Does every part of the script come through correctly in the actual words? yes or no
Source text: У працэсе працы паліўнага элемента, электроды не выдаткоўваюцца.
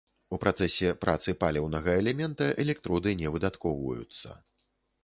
yes